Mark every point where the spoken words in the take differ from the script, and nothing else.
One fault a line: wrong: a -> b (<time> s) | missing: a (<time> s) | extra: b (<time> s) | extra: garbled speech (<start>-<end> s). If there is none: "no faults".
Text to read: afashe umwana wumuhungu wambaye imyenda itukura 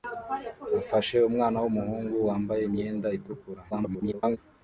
extra: garbled speech (3.7-4.4 s)